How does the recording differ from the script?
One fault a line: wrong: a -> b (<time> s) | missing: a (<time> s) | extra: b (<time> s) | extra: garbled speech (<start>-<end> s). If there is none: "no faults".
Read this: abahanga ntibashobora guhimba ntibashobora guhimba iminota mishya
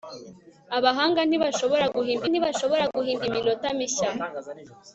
no faults